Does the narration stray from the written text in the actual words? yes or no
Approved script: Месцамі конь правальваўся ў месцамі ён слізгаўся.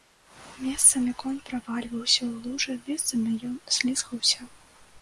yes